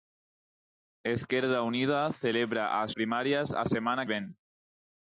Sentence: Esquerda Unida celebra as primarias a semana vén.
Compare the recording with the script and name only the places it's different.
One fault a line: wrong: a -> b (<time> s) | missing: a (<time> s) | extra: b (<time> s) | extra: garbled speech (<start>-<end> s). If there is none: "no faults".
no faults